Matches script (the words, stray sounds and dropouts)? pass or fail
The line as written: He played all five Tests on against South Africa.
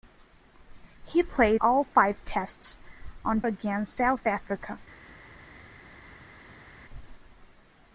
pass